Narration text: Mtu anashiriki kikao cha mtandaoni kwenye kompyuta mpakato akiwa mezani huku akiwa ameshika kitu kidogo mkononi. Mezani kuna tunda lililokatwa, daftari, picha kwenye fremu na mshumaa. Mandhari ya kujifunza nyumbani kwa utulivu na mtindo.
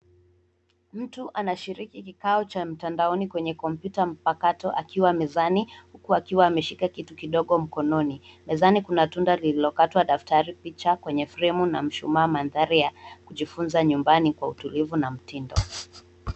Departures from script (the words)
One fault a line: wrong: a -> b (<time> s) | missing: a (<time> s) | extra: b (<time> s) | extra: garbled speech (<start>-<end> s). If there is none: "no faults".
no faults